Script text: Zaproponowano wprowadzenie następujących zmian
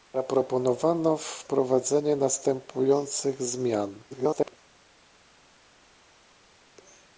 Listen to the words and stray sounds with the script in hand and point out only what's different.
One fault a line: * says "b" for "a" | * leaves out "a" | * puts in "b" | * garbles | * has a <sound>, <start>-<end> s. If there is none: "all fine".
* garbles